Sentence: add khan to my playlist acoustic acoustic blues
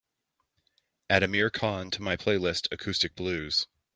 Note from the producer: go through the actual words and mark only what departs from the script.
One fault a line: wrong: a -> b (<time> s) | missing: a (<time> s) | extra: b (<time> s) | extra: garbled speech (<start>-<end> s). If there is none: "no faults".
extra: amir (1.2 s)
missing: acoustic (3.1 s)